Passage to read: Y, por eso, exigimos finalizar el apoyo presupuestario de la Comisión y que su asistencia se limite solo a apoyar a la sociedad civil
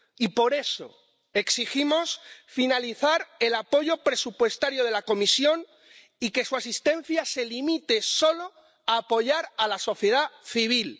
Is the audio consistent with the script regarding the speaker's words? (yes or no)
yes